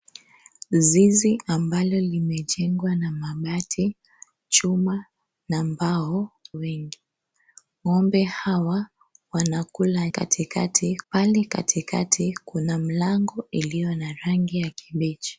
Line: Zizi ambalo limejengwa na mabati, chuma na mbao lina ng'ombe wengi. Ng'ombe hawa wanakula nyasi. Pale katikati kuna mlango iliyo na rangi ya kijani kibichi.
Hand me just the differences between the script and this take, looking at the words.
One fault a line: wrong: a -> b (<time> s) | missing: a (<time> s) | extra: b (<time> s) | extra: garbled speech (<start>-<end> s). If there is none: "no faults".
missing: lina ng'ombe (6.3 s)
wrong: nyasi -> katikati (10.1 s)
missing: kijani (14.7 s)